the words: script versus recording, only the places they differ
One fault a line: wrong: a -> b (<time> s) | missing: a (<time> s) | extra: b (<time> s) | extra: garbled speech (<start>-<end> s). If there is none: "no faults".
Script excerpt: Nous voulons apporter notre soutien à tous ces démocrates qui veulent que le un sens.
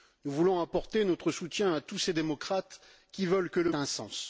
no faults